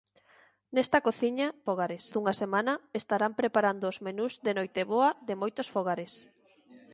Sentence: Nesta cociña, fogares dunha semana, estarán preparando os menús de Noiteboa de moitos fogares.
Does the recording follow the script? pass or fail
pass